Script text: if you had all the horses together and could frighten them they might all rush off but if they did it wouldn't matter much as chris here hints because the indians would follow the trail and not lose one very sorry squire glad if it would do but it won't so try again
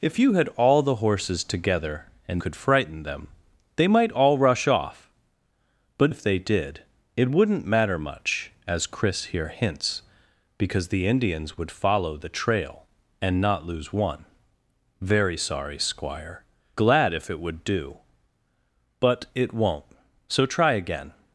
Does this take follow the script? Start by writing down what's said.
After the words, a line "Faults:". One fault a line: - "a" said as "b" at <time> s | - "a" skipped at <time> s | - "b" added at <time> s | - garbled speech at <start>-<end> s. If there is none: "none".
if you had all the horses together and could frighten them they might all rush off but if they did it wouldn't matter much as chris here hints because the indians would follow the trail and not lose one very sorry squire glad if it would do but it won't so try again
Faults:
none